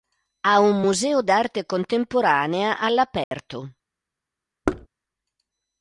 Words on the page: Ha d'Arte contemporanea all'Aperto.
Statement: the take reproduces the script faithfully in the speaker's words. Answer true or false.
false